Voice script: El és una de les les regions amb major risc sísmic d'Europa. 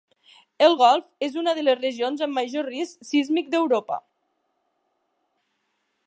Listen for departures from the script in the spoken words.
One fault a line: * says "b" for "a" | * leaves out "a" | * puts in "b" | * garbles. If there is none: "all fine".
* puts in "golf"
* leaves out "les"